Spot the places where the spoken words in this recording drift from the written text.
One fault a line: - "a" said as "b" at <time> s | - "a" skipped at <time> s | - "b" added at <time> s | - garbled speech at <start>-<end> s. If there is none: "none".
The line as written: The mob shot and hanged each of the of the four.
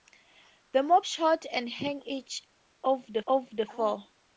none